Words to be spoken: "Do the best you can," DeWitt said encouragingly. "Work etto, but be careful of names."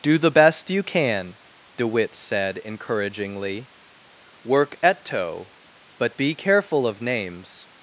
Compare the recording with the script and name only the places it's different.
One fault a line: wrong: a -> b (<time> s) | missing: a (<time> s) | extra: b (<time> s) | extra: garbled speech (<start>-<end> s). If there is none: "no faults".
no faults